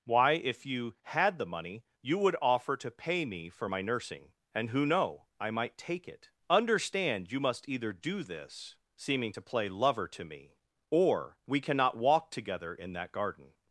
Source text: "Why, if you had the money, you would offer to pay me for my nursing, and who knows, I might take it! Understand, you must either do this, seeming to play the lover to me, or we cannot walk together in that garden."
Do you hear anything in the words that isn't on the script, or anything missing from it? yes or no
yes